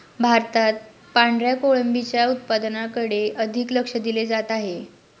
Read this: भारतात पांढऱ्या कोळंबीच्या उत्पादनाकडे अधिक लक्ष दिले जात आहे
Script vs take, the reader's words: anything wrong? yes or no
no